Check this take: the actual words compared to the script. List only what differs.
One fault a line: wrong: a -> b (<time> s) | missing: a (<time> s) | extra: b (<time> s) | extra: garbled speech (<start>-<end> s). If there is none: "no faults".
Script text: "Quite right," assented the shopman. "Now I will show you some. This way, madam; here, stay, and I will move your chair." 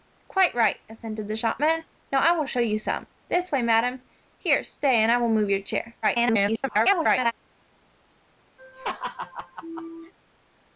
extra: garbled speech (6.0-7.3 s)